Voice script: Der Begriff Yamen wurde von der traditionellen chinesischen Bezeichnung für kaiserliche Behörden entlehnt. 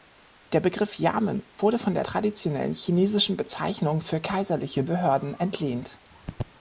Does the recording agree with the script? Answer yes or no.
yes